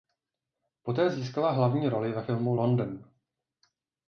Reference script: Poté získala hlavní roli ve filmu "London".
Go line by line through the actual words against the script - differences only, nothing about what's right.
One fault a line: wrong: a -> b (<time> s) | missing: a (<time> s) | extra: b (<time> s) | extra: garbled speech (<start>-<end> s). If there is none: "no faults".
no faults